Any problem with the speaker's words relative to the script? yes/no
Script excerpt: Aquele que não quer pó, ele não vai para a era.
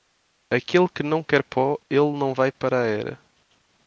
no